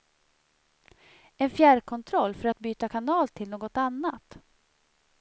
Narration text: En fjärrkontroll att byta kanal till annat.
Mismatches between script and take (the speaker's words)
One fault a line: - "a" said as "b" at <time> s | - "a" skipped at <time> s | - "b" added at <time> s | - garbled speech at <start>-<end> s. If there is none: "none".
- "för" added at 2.4 s
- "något" added at 3.5 s